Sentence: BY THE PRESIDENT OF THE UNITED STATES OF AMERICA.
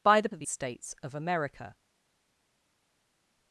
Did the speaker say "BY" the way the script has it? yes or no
yes